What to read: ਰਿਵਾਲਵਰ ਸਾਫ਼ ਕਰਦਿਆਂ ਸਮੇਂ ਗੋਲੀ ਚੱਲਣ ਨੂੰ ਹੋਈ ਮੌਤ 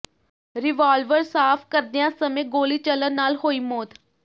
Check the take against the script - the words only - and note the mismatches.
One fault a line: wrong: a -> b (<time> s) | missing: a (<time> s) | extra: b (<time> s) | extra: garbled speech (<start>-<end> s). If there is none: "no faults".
wrong: ਨੂੰ -> ਨਾਲ (3.1 s)